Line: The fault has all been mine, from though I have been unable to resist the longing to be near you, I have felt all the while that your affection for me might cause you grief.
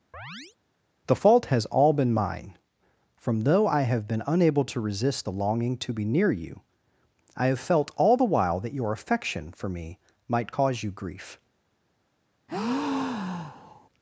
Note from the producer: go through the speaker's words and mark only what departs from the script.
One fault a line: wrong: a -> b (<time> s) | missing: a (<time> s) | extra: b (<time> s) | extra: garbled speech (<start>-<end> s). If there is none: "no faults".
no faults